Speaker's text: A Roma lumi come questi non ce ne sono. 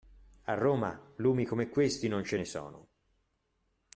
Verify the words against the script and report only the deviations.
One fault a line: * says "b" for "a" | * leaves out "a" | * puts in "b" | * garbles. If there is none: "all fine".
all fine